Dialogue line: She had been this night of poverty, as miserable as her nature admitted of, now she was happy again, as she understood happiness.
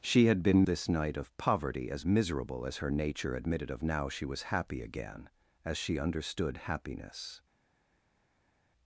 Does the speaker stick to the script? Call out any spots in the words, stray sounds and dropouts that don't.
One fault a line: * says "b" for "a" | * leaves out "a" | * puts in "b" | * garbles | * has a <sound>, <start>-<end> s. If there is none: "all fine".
all fine